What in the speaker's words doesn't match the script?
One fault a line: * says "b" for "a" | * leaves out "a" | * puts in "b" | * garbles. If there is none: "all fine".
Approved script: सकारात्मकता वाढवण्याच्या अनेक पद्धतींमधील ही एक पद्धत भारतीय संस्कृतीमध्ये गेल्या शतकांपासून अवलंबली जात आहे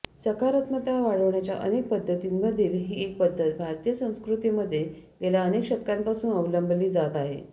* puts in "अनेक"